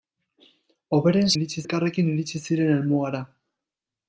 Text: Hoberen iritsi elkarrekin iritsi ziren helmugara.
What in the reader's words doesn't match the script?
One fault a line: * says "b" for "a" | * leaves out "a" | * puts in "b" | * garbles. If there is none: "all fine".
all fine